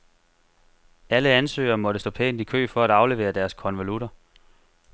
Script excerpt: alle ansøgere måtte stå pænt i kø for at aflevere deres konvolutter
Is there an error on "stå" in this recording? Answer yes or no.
no